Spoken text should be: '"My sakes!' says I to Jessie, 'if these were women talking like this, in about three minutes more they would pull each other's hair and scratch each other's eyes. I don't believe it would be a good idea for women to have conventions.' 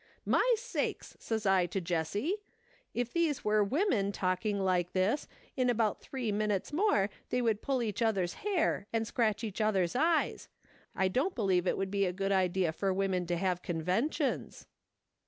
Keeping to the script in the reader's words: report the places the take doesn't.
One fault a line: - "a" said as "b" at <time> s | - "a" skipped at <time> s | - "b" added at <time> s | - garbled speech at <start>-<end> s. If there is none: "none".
none